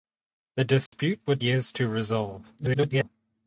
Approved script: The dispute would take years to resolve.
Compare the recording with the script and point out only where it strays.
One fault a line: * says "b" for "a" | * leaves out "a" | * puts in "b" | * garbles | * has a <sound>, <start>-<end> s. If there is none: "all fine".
* has a dropout, 0.9-0.9 s
* leaves out "take"
* garbles